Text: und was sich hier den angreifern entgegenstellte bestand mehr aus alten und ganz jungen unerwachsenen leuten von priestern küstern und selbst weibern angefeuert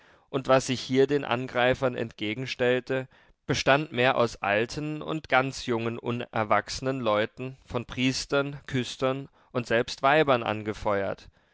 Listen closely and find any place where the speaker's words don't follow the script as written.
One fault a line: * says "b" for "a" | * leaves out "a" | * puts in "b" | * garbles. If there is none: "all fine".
all fine